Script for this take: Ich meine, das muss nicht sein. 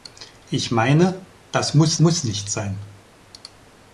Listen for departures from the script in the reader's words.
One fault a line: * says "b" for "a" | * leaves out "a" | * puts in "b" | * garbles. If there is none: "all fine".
* puts in "muss"